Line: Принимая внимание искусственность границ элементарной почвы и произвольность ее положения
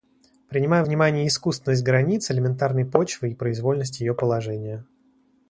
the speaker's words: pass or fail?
pass